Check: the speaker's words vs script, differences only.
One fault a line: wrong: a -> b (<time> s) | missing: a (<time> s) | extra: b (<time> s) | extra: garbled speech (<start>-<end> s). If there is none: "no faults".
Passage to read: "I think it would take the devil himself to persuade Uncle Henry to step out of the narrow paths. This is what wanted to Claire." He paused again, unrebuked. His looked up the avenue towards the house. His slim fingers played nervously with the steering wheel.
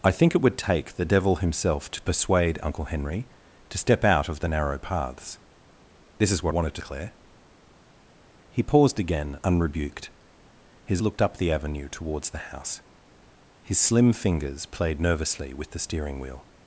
no faults